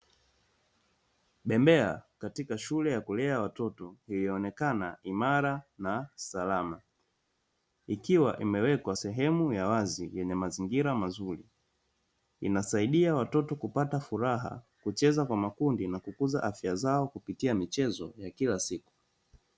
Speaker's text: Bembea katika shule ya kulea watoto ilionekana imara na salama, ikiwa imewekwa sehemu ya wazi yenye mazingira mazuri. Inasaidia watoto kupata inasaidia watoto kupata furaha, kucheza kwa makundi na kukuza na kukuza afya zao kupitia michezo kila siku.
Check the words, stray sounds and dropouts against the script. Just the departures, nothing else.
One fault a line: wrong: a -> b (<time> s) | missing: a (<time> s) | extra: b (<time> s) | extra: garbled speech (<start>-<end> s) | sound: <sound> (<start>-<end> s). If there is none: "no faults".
missing: inasaidia watoto kupata (14.0 s)
missing: na kukuza (16.4 s)
extra: ya (18.2 s)